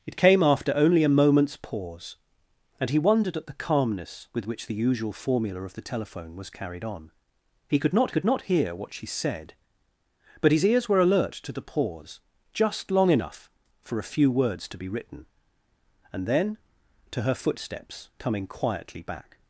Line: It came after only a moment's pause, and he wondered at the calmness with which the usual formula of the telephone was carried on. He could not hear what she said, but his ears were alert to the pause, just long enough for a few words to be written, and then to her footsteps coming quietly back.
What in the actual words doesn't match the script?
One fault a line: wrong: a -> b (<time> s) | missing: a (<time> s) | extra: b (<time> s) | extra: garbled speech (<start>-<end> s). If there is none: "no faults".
extra: could not (8.1 s)